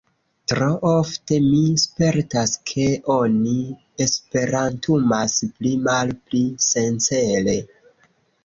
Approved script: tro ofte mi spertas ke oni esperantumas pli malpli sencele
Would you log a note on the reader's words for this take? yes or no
no